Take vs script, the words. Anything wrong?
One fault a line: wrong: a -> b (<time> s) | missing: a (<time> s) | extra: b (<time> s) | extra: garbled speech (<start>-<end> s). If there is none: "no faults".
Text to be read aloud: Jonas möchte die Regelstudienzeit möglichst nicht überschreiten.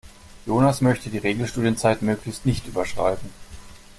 no faults